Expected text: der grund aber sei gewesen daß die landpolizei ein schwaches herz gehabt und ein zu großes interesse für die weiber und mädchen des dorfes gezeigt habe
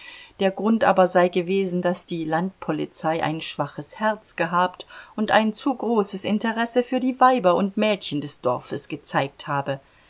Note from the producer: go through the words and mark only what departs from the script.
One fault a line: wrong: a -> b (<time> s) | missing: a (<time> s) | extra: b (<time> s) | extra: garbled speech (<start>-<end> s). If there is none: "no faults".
no faults